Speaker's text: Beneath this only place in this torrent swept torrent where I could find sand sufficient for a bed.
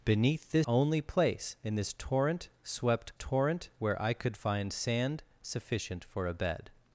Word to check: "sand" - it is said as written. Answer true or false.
true